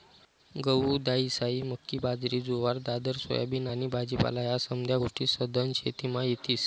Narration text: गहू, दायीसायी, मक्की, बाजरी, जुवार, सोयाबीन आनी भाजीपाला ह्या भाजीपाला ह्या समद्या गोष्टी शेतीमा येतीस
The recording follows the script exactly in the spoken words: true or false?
false